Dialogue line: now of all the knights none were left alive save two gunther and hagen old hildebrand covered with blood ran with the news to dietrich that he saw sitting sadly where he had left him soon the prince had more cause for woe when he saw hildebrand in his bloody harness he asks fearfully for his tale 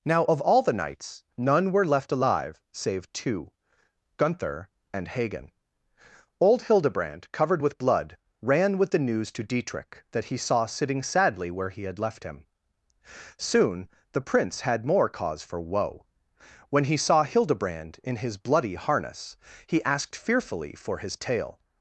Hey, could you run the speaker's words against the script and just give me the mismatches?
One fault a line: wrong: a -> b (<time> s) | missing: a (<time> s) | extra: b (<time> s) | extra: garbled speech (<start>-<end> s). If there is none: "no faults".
wrong: asks -> asked (19.8 s)